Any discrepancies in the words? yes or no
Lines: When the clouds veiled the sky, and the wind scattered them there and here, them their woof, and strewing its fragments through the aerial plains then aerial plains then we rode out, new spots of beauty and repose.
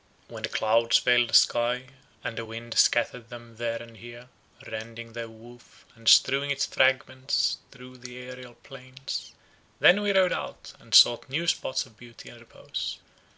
yes